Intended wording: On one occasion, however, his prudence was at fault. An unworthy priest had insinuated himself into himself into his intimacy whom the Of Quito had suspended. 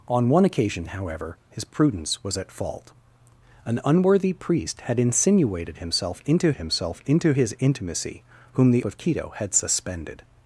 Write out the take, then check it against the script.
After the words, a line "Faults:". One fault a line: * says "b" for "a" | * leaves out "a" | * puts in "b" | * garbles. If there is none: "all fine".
On one occasion, however, his prudence was at fault. An unworthy priest had insinuated himself into himself into his intimacy whom the Of Quito had suspended.
Faults:
all fine